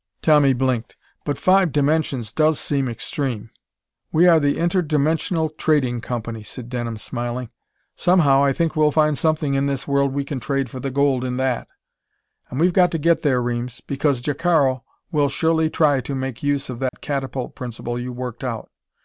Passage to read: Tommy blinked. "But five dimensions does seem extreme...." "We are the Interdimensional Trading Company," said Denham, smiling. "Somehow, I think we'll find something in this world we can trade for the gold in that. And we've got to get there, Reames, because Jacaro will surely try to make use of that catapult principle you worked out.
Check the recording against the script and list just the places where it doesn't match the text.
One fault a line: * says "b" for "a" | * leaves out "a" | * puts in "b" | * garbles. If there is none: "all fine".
all fine